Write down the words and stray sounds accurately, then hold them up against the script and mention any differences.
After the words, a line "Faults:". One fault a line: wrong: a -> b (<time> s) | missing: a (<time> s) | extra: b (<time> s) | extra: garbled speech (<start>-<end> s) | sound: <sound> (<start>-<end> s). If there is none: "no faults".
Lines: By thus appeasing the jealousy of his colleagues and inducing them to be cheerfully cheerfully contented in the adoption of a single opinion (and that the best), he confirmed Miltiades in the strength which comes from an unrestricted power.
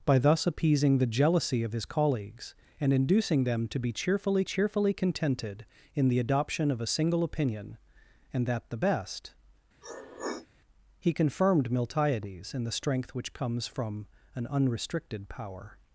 By thus appeasing the jealousy of his colleagues and inducing them to be cheerfully cheerfully contented in the adoption of a single opinion (and that the best), he confirmed Miltiades in the strength which comes from an unrestricted power.
Faults:
sound: sniff (9.8-10.5 s)